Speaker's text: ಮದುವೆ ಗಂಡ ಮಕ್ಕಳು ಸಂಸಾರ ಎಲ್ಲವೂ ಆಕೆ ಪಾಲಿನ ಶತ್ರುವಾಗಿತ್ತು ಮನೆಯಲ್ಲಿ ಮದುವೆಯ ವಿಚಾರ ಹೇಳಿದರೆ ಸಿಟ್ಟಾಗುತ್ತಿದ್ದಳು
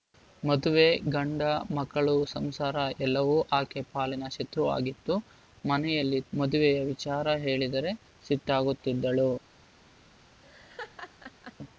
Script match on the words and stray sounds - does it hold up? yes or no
no